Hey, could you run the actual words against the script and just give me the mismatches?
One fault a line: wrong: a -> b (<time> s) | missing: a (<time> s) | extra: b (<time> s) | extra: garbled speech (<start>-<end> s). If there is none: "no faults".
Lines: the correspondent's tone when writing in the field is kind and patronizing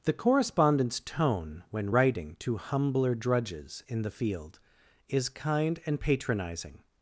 extra: to humbler drudges (2.4 s)